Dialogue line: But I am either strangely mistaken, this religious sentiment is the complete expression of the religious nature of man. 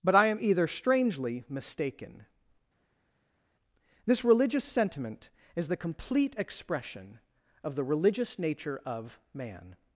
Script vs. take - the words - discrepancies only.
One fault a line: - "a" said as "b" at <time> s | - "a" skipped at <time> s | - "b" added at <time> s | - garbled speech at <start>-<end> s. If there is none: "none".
none